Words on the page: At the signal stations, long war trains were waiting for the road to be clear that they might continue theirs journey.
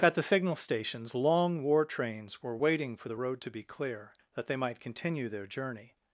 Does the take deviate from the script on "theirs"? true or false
true